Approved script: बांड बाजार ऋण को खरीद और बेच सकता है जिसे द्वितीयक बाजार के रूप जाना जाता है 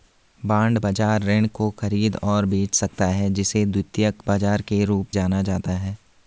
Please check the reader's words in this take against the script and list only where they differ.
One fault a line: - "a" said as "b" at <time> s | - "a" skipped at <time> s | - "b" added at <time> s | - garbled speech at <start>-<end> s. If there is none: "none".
none